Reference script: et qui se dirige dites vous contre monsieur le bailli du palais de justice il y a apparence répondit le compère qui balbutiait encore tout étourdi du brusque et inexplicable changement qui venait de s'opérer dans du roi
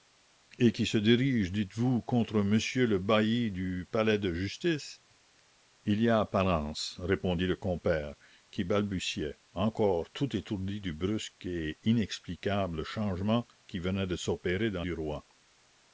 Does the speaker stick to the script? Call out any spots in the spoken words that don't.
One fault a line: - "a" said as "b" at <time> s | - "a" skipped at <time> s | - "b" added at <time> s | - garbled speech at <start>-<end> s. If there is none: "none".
none